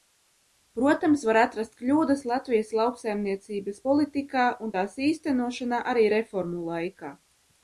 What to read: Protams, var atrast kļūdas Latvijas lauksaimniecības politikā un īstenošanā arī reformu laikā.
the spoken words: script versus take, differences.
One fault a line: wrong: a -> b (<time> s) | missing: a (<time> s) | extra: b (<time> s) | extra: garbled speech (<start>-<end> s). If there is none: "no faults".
extra: tās (4.8 s)